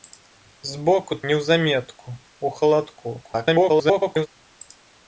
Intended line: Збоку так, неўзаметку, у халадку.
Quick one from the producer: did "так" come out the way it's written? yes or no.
no